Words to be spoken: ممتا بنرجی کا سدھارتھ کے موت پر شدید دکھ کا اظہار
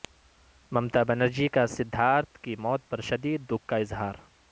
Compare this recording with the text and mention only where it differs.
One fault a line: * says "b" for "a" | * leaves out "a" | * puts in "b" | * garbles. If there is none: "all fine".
* says "کی" for "کے"